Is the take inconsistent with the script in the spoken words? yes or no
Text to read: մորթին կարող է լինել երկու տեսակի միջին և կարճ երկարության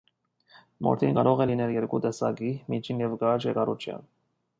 no